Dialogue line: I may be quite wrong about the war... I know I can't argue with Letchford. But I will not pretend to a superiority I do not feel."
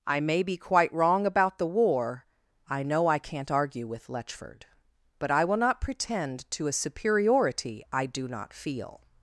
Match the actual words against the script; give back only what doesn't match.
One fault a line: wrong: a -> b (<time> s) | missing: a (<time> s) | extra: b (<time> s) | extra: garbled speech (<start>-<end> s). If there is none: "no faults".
no faults